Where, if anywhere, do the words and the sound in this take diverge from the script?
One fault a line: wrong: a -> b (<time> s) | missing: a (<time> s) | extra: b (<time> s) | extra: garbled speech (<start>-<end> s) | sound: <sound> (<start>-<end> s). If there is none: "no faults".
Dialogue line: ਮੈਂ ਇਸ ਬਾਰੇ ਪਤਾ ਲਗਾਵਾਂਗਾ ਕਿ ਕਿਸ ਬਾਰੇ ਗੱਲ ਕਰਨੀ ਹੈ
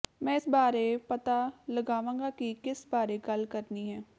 no faults